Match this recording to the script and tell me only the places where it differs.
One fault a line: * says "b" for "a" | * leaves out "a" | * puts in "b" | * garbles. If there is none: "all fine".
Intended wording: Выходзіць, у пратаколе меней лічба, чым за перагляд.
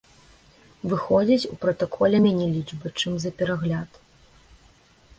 all fine